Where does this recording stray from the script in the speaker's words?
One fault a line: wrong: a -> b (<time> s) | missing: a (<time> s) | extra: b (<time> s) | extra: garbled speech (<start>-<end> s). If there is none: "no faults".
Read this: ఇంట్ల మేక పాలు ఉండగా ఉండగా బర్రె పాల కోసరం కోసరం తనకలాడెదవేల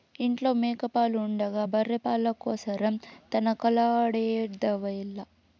missing: ఉండగా (1.6 s)
missing: కోసరం (3.0 s)